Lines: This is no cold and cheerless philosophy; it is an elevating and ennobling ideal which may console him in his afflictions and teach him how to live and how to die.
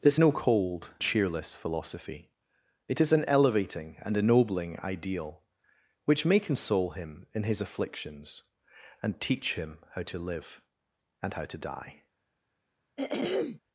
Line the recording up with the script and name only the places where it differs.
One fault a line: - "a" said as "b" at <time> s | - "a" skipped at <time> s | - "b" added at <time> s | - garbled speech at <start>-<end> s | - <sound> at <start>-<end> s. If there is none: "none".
- "is" skipped at 0.2 s
- "and" skipped at 0.9 s
- throat clearing at 13.0-13.6 s